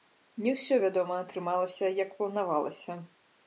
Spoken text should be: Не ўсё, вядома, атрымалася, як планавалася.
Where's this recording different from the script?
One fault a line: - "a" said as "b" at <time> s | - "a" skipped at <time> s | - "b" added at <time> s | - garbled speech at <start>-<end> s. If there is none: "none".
none